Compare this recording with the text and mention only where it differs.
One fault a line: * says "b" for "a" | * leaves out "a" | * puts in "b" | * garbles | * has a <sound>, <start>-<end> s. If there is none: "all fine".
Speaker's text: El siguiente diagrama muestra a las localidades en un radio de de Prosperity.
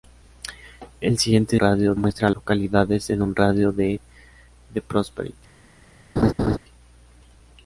* says "radio" for "diagrama"
* leaves out "las"
* has a laugh, 6.2-6.6 s